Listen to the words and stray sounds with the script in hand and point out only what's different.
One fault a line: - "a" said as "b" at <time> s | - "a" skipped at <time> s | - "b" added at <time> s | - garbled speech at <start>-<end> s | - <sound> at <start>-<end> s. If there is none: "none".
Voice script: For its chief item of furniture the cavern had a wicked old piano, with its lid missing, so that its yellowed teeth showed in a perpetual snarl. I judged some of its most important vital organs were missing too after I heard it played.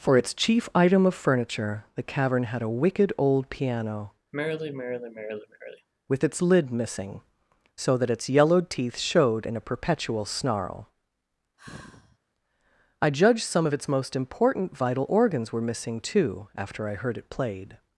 - sigh at 4.3-5.9 s
- sigh at 11.6-12.2 s